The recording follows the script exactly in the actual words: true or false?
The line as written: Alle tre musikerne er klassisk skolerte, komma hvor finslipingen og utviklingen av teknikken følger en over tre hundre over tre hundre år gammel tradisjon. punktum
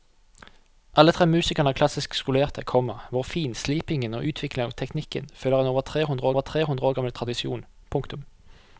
true